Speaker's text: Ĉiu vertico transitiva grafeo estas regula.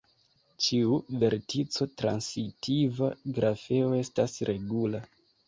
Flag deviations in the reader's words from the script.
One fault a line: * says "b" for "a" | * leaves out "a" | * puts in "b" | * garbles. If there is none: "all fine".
all fine